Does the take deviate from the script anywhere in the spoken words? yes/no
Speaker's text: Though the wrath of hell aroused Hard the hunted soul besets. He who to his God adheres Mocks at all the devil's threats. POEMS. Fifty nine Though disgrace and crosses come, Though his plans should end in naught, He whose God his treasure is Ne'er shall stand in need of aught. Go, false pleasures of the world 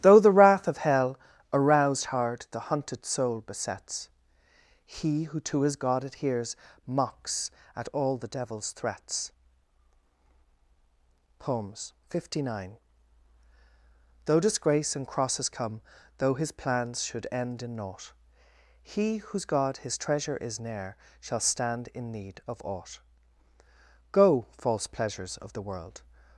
no